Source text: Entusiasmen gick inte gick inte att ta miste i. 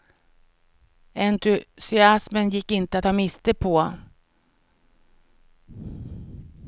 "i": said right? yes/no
no